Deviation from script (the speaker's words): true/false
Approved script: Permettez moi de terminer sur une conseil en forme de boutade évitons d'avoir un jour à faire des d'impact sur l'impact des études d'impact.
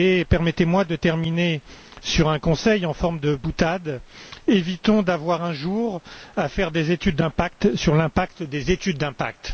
true